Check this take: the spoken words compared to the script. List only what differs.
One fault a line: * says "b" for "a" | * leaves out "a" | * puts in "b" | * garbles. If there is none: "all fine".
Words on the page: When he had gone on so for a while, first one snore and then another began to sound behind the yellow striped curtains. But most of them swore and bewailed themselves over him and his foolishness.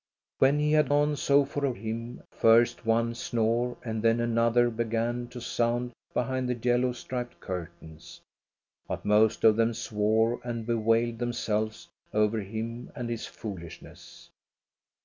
* leaves out "gone"
* says "him" for "while"